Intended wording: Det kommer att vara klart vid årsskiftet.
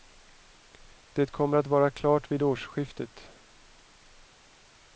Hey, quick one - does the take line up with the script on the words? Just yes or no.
yes